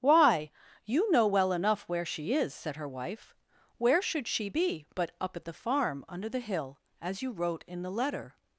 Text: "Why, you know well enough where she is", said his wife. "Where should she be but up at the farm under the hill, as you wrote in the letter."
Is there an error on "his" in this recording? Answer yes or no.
yes